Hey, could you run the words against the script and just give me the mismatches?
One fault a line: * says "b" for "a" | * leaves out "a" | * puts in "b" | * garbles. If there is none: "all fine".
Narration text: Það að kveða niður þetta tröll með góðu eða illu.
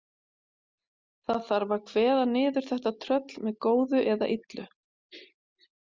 * puts in "þarf"